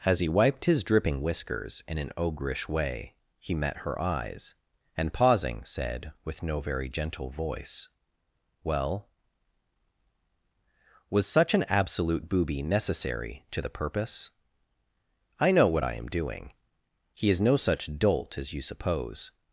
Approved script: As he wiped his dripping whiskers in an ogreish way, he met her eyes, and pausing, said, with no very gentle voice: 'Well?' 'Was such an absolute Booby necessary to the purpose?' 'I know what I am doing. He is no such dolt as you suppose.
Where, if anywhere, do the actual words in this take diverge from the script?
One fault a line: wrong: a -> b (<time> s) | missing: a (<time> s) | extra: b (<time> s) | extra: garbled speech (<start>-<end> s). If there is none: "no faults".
no faults